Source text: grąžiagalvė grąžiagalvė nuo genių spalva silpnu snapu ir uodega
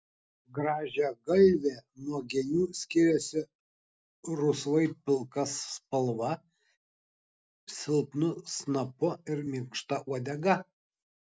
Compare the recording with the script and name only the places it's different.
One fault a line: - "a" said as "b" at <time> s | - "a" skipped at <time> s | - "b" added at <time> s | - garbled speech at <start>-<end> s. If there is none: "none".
- "grąžiagalvė" skipped at 1.7 s
- "skiriasi rusvai pilka" added at 2.8 s
- "minkšta" added at 9.5 s